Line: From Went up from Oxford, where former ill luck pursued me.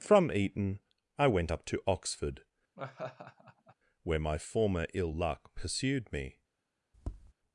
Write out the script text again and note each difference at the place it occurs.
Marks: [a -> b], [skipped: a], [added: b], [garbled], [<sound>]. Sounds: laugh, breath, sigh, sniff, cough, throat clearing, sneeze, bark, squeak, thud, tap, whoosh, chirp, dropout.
From [added: Eton I] Went up [from -> to] Oxford, [laugh] where [added: my] former ill luck pursued me. [tap]